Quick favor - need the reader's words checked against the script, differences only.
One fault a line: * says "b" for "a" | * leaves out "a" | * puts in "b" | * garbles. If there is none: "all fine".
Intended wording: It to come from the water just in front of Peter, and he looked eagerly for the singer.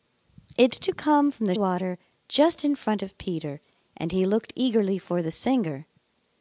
all fine